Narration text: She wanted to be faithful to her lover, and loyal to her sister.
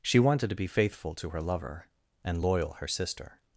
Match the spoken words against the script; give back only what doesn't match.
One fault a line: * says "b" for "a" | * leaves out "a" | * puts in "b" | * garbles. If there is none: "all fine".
* leaves out "to"